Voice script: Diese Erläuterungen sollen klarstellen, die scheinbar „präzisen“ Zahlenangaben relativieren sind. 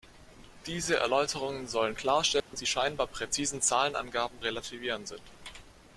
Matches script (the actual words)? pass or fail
pass